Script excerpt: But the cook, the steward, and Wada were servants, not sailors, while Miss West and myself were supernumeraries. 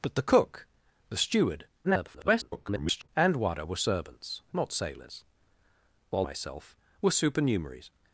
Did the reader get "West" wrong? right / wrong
wrong